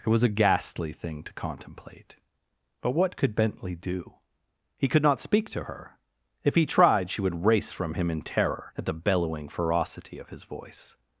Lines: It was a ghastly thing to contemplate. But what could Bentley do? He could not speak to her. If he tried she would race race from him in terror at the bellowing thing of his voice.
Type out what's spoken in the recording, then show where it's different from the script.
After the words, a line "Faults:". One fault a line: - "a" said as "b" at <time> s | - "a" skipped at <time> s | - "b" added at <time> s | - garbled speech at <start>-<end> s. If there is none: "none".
It was a ghastly thing to contemplate. But what could Bentley do? He could not speak to her. If he tried she would race from him in terror at the bellowing ferocity of his voice.
Faults:
- "race" skipped at 7.7 s
- "thing" said as "ferocity" at 9.5 s